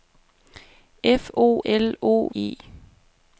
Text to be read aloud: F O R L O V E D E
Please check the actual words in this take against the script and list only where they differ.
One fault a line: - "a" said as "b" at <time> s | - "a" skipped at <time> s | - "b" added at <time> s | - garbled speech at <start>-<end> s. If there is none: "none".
- "R" skipped at 1.6 s
- "V E D" skipped at 2.3 s